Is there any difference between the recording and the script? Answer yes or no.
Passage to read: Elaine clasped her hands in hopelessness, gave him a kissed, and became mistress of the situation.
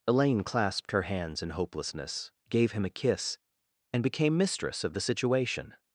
yes